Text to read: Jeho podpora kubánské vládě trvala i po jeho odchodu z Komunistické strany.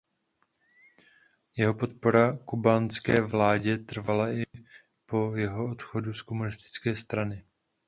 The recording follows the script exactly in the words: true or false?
true